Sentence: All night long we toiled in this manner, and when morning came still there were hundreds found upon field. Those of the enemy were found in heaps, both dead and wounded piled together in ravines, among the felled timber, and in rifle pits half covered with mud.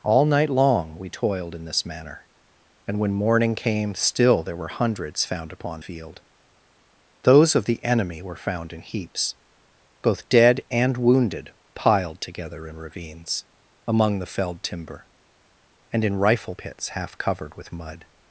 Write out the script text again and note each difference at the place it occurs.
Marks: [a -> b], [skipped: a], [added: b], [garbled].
All night long we toiled in this manner, and when morning came still there were hundreds found upon field. Those of the enemy were found in heaps, both dead and wounded piled together in ravines, among the felled timber, and in rifle pits half covered with mud.